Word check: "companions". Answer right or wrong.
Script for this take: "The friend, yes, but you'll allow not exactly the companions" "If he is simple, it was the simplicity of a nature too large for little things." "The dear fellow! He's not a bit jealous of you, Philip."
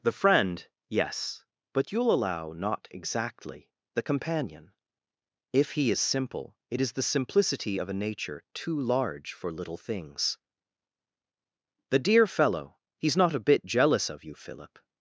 wrong